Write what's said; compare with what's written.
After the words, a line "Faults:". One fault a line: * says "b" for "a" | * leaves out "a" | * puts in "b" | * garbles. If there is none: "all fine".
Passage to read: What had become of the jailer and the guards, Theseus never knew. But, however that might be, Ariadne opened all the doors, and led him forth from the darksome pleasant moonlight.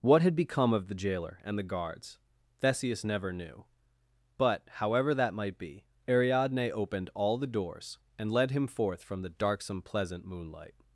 What had become of the jailer and the guards, Theseus never knew. But, however that might be, Ariadne opened all the doors, and led him forth from the darksome pleasant moonlight.
Faults:
all fine